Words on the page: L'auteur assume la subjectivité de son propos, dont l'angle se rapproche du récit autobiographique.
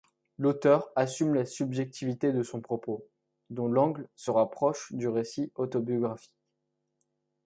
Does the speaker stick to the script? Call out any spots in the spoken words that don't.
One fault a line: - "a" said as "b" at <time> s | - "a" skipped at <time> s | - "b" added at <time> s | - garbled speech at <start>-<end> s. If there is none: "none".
none